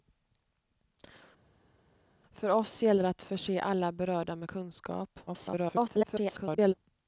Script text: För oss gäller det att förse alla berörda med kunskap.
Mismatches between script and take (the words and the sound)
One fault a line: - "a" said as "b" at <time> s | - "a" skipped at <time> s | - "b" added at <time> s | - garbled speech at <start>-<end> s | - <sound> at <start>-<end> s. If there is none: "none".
- garbled speech at 5.3-6.7 s